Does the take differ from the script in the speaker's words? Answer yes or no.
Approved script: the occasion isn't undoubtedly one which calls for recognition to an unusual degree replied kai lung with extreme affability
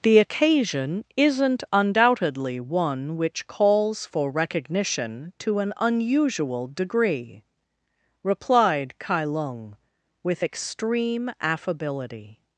no